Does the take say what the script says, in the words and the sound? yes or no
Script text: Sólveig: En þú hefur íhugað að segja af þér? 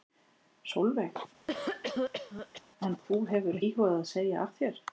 no